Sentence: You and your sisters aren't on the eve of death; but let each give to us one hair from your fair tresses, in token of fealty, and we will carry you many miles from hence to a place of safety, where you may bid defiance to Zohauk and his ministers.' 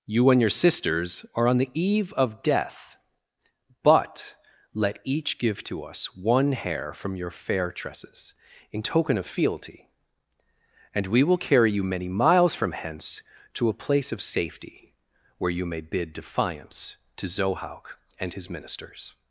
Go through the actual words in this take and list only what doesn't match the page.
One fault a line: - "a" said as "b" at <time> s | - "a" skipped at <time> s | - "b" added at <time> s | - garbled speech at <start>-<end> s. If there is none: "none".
- "aren't" said as "are" at 1.4 s